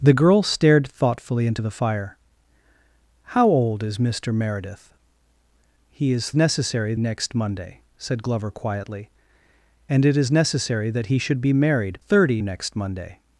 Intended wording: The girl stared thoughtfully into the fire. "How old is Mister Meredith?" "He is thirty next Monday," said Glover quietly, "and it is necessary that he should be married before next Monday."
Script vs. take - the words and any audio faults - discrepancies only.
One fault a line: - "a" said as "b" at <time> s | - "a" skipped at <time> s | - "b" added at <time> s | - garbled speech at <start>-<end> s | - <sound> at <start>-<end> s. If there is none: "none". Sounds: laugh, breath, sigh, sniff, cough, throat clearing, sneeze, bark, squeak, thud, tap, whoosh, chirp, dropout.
- "thirty" said as "necessary" at 6.3 s
- "before" said as "thirty" at 12.0 s